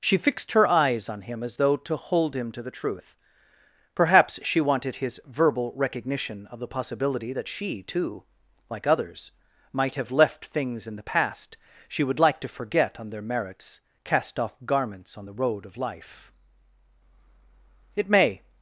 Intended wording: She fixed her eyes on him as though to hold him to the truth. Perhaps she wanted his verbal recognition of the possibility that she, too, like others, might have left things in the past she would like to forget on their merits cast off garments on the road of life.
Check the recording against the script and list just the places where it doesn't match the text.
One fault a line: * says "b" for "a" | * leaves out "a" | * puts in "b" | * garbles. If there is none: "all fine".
* puts in "It may"